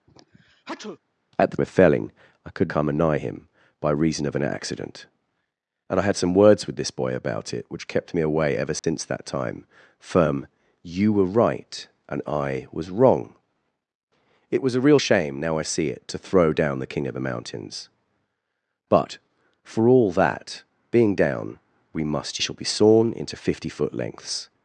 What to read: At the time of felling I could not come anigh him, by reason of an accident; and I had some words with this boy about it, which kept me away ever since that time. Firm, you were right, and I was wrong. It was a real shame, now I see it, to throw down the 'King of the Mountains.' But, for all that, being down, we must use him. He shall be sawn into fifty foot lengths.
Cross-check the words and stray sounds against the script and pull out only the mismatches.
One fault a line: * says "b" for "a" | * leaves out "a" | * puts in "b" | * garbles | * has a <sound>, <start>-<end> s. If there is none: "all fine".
* has a sneeze, 0.1-1.0 s
* leaves out "time"
* leaves out "not"
* has a dropout, 8.8-8.8 s
* leaves out "use him He"